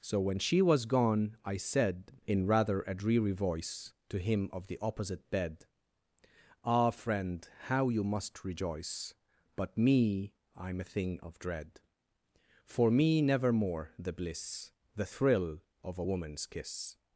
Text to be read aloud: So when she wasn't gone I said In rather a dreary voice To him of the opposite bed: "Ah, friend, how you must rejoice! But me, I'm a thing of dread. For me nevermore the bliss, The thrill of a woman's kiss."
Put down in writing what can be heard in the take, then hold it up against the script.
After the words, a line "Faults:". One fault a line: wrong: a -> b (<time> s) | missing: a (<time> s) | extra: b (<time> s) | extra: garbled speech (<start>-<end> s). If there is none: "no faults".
So when she was gone I said In rather a dreary voice To him of the opposite bed: "Ah, friend, how you must rejoice! But me, I'm a thing of dread. For me nevermore the bliss, The thrill of a woman's kiss."
Faults:
wrong: wasn't -> was (0.6 s)